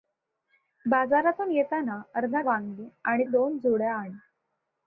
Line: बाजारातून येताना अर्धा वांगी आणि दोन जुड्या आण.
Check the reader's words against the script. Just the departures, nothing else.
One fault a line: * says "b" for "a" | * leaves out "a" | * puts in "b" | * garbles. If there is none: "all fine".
all fine